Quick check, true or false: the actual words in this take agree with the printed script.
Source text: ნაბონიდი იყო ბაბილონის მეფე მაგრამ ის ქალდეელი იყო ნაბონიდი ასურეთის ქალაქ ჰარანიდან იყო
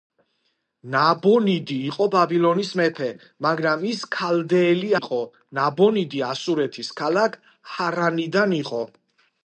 true